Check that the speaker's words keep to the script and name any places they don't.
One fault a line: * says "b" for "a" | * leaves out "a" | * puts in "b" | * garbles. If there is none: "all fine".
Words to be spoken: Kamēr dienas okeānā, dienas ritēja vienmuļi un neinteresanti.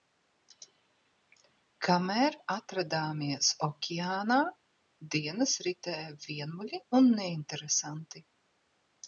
* says "atradāmies" for "dienas"